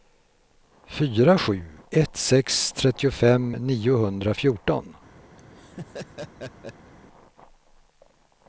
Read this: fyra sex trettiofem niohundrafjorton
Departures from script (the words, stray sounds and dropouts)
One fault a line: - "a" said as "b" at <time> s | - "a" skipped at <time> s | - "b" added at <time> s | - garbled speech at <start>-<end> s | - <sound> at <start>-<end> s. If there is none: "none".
- "sju ett" added at 1.3 s
- laugh at 5.4-6.9 s